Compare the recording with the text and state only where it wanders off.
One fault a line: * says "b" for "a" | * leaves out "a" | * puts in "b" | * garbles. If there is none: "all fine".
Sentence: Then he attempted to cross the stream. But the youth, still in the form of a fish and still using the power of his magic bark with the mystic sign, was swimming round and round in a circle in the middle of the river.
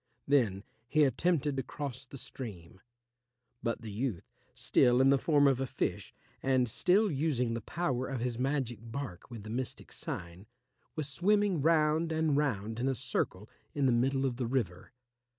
all fine